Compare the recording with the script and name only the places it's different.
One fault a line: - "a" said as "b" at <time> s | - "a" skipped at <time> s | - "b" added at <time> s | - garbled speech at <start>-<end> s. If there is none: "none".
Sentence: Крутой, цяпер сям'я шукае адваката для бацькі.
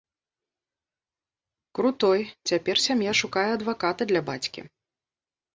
none